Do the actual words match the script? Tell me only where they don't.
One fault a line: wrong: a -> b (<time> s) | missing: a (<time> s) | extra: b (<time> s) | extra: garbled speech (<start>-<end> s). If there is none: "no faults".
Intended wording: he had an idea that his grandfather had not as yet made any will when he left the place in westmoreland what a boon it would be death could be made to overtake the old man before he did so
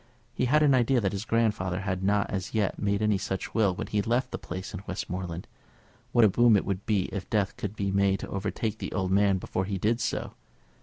extra: such (3.2 s)
extra: if (7.1 s)